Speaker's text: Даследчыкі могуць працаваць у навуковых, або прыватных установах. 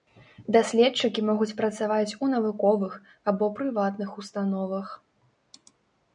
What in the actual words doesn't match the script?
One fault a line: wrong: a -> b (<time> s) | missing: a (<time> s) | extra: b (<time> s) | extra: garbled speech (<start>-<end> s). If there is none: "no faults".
no faults